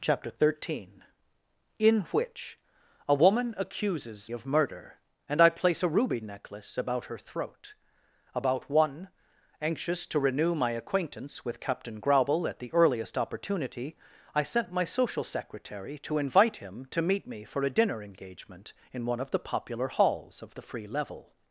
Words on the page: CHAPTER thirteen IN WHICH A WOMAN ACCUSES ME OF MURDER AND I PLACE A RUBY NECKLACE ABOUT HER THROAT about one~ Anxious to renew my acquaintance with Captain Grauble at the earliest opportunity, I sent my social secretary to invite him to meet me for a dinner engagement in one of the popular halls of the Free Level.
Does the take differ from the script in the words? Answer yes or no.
yes